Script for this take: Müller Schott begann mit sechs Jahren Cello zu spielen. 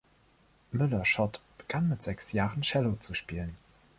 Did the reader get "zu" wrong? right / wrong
right